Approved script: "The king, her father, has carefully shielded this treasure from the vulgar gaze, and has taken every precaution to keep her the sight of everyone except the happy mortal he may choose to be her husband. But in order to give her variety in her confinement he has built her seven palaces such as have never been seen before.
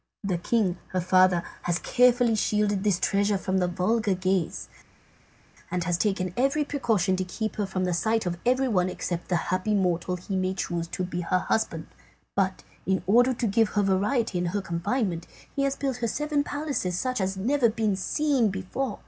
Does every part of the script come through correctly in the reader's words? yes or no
no